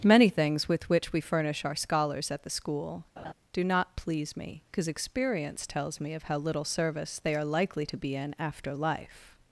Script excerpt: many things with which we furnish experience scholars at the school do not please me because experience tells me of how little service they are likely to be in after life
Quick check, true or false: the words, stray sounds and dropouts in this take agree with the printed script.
false